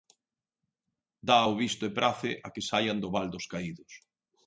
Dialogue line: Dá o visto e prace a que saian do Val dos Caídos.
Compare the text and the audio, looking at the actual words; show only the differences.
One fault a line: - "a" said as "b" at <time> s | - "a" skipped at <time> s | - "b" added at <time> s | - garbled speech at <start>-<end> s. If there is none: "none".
none